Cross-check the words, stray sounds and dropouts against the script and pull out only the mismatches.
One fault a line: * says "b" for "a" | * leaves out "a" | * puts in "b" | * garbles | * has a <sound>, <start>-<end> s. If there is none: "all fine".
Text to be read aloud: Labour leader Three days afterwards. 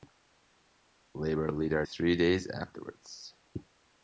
all fine